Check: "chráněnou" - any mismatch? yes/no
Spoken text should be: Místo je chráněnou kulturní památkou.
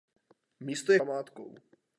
yes